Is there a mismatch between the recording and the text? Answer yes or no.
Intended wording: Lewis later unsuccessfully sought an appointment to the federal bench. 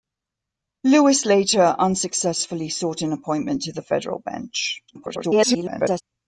yes